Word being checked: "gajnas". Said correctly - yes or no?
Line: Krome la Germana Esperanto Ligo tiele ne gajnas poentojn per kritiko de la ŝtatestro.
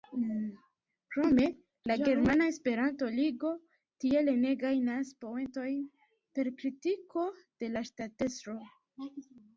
yes